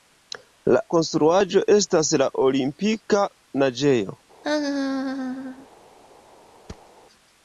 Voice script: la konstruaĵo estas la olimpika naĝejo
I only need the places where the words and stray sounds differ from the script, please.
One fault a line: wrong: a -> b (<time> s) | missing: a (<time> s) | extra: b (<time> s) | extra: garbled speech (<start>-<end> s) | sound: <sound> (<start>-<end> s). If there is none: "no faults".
sound: laugh (4.4-5.7 s)
sound: thud (6.7-6.9 s)